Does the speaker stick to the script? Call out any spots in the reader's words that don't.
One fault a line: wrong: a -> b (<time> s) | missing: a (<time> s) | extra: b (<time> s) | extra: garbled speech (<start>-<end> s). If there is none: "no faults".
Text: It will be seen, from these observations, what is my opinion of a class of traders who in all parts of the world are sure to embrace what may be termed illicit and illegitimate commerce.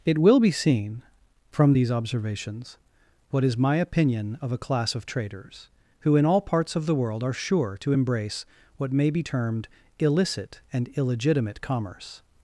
no faults